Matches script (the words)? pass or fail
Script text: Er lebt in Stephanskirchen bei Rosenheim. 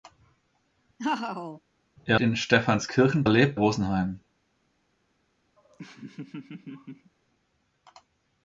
fail